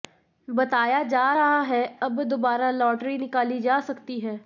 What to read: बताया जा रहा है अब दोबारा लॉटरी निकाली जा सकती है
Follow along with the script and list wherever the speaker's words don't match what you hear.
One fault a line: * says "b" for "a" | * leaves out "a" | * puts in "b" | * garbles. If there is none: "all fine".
all fine